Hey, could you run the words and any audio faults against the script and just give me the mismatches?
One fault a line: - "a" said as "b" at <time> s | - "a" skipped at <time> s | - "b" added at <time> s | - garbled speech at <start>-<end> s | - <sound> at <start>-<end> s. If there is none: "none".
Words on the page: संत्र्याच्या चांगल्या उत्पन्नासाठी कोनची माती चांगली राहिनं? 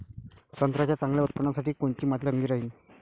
none